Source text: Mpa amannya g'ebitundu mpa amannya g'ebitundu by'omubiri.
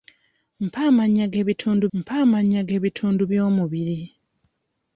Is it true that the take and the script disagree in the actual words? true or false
false